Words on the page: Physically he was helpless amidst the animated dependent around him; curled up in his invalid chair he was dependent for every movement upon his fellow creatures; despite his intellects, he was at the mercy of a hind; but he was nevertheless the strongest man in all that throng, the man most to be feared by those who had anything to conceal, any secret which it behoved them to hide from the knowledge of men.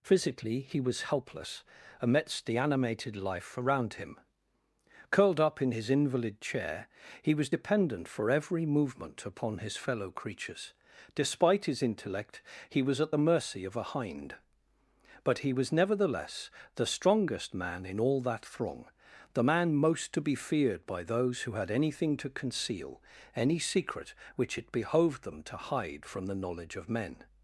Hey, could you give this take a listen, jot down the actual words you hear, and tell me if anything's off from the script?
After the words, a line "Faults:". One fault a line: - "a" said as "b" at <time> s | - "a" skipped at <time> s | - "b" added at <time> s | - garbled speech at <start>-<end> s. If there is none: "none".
Physically he was helpless amidst the animated life around him; curled up in his invalid chair he was dependent for every movement upon his fellow creatures; despite his intellect, he was at the mercy of a hind; but he was nevertheless the strongest man in all that throng, the man most to be feared by those who had anything to conceal, any secret which it behoved them to hide from the knowledge of men.
Faults:
- "dependent" said as "life" at 3.1 s
- "intellects" said as "intellect" at 11.8 s